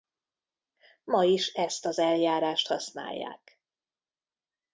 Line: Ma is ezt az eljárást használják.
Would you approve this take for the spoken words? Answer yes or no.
yes